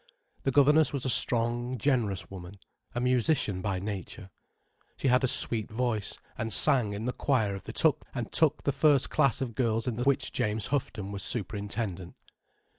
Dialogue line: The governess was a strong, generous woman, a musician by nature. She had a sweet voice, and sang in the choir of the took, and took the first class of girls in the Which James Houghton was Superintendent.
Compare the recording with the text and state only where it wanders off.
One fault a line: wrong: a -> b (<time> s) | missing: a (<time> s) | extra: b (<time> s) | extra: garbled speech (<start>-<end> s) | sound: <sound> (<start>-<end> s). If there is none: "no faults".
no faults